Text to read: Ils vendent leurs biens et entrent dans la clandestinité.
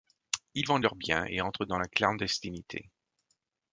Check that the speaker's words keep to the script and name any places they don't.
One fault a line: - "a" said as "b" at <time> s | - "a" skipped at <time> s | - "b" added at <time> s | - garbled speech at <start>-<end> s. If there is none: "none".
none